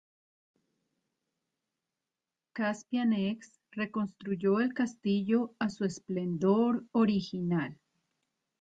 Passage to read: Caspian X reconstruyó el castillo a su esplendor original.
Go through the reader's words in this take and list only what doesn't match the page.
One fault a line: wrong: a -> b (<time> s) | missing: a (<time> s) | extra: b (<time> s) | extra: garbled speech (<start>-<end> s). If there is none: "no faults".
no faults